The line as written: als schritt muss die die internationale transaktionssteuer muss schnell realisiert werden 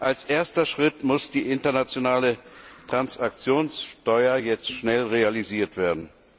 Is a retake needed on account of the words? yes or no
yes